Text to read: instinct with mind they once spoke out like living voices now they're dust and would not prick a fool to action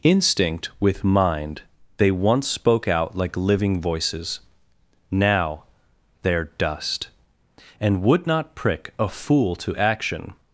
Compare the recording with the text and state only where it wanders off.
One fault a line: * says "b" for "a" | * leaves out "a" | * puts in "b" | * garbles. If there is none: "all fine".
all fine